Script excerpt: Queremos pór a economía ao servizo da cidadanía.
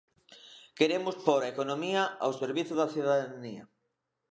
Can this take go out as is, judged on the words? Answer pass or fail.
pass